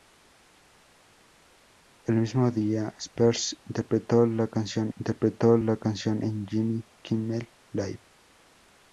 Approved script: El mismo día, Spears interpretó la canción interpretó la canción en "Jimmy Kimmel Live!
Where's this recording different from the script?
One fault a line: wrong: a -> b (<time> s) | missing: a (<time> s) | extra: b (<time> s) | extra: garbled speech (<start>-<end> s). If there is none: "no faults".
no faults